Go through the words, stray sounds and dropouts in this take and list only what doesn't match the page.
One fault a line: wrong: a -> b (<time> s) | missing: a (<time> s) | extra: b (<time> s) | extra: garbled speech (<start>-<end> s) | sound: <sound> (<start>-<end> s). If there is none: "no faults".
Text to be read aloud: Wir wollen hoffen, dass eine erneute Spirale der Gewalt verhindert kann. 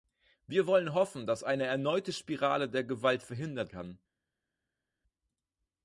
no faults